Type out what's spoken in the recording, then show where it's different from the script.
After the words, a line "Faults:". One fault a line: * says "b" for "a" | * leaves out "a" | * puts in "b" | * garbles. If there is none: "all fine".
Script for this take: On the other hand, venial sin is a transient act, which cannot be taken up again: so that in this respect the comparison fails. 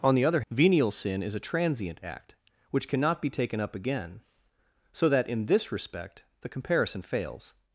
On the other venial sin is a transient act, which cannot be taken up again: so that in this respect the comparison fails.
Faults:
* leaves out "hand"